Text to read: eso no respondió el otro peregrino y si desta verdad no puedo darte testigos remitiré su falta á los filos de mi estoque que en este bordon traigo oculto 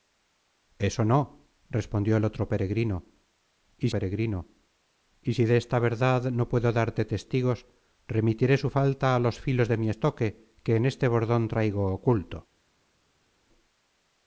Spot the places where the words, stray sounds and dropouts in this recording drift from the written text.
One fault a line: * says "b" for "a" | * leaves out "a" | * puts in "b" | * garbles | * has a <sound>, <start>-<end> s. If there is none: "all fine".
* puts in "peregrino y"